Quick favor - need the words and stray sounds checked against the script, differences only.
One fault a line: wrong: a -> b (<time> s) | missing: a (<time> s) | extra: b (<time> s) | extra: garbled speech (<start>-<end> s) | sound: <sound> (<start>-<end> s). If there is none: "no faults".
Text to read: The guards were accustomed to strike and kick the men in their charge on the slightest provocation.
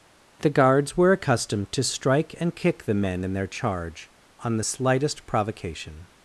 no faults